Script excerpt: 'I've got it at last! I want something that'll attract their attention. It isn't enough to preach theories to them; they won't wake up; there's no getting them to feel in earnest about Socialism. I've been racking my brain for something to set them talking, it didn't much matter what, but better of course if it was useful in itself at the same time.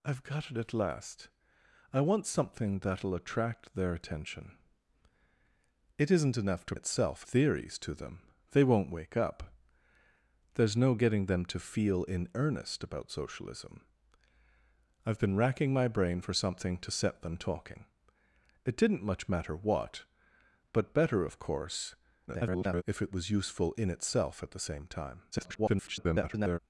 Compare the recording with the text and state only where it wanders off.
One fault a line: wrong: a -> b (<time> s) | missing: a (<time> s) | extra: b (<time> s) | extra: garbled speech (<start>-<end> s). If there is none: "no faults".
wrong: preach -> itself (6.7 s)
extra: garbled speech (22.3-22.8 s)
extra: garbled speech (25.3-26.6 s)